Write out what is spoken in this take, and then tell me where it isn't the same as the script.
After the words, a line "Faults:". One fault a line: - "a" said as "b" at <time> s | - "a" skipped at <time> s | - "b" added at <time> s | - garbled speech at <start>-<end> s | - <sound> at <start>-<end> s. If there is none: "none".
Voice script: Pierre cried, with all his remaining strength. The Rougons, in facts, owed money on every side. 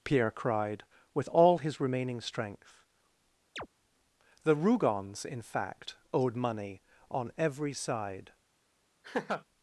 Pierre cried, with all his remaining strength. The Rougons, in fact, owed money on every side.
Faults:
- chirp at 3.6-3.7 s
- "facts" said as "fact" at 5.4 s
- laugh at 9.0-9.4 s